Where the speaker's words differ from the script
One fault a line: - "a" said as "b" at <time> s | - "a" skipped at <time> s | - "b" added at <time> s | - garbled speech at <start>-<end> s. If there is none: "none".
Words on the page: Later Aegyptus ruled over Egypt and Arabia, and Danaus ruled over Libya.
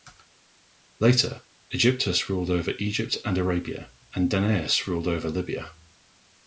none